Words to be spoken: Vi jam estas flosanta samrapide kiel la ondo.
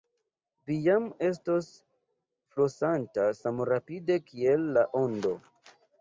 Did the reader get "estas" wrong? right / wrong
wrong